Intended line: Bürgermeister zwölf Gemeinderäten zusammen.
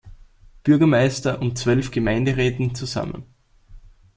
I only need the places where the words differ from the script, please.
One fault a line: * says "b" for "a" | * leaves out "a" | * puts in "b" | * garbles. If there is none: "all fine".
* puts in "und"